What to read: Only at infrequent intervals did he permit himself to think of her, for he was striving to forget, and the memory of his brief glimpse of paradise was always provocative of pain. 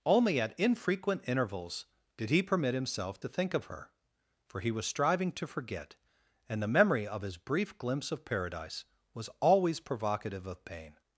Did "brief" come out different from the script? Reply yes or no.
no